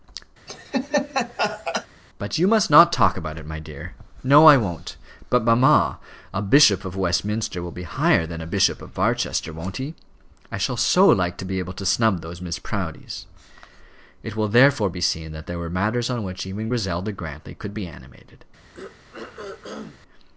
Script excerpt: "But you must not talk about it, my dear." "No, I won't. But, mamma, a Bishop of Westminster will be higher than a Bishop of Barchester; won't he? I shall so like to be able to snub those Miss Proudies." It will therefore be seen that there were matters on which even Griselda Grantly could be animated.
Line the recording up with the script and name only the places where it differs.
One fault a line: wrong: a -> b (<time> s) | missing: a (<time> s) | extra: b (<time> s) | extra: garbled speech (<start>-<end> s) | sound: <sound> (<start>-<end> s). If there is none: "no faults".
sound: laugh (0.5-1.9 s)
sound: throat clearing (18.7-20.0 s)